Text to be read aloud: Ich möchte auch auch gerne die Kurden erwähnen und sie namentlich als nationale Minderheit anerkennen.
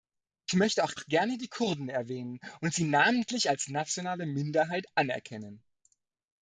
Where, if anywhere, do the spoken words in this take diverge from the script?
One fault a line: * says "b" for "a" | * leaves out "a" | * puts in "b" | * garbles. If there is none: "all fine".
all fine